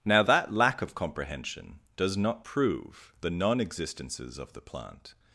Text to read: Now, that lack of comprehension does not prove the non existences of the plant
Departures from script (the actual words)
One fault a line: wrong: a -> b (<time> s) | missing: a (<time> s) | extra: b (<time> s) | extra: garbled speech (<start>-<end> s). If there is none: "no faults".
no faults